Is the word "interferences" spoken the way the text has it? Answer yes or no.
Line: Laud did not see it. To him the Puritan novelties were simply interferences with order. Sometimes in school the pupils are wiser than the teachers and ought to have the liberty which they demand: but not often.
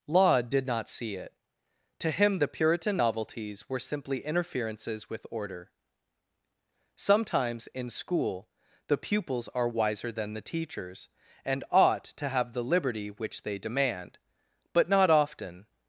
yes